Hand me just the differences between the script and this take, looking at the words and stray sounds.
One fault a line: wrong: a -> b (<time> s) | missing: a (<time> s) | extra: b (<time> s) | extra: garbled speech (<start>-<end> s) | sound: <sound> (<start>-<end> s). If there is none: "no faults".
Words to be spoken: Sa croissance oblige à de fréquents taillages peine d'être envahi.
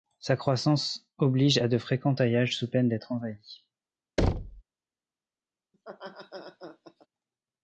extra: sous (2.6 s)
sound: thud (4.2-4.6 s)
sound: laugh (5.7-7.1 s)